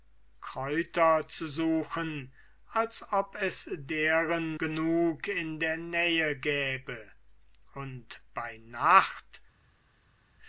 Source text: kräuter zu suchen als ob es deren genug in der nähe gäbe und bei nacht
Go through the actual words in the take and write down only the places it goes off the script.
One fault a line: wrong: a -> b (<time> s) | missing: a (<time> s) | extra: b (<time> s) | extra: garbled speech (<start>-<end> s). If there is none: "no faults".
no faults